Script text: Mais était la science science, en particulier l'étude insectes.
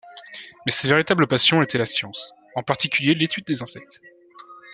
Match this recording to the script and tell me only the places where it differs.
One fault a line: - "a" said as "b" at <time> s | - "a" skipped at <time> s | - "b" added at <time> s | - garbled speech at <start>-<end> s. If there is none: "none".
- "sa véritable passion" added at 0.7 s
- "science" skipped at 2.3 s
- "des" added at 3.4 s